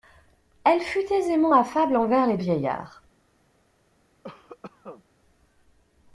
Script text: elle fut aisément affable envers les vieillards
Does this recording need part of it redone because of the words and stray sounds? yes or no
yes